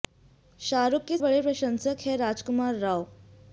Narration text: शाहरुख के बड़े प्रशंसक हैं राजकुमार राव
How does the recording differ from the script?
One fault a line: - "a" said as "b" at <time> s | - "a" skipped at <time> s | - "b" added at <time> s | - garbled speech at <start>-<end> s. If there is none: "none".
none